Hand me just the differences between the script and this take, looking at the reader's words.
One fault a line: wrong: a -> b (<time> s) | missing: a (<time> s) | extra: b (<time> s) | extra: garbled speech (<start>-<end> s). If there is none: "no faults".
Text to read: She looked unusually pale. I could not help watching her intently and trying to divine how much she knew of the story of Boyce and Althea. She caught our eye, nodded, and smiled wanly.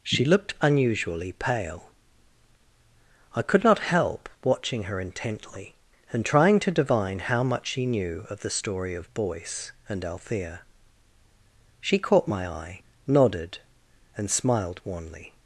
wrong: our -> my (12.3 s)